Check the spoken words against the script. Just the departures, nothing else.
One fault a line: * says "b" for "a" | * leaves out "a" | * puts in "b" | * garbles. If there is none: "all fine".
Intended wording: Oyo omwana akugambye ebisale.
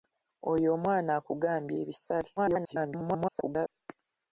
* garbles